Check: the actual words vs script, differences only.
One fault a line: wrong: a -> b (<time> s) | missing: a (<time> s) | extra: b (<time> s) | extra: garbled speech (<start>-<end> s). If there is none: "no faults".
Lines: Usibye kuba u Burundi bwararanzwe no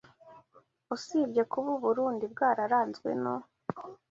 no faults